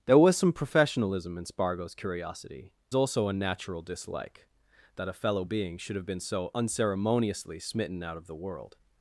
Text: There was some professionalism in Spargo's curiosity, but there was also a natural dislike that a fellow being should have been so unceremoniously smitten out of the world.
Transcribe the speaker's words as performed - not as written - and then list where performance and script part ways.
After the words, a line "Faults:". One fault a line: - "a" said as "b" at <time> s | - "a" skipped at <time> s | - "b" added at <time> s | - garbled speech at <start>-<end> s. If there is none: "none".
There was some professionalism in Spargo's curiosity, also a natural dislike that a fellow being should have been so unceremoniously smitten out of the world.
Faults:
- "but there was" skipped at 2.7 s